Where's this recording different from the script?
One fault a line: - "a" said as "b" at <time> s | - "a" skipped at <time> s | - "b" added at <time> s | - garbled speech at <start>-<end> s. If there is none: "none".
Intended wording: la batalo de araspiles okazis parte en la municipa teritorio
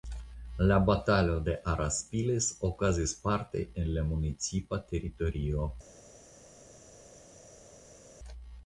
none